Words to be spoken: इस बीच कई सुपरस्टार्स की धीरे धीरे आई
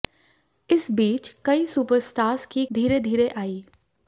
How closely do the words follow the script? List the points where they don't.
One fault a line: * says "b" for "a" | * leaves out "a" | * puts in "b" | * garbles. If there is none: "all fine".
all fine